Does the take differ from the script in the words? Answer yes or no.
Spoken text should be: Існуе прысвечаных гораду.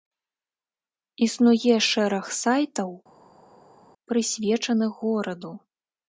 yes